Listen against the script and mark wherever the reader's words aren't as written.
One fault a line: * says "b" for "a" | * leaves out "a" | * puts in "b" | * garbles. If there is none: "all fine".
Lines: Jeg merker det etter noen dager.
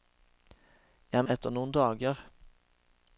* leaves out "merker det"